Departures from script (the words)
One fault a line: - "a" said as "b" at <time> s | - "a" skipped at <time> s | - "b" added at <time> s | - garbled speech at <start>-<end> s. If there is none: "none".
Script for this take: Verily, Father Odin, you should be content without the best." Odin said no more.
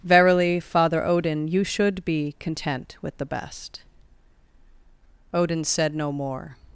- "without" said as "with" at 3.0 s